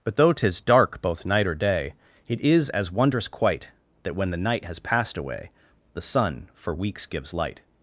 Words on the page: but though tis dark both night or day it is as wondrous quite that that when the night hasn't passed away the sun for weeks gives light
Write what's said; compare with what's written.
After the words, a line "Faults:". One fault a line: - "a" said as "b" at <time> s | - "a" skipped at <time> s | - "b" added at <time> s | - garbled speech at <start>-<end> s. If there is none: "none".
but though tis dark both night or day it is as wondrous quite that when the night has passed away the sun for weeks gives light
Faults:
- "that" skipped at 4.1 s
- "hasn't" said as "has" at 4.6 s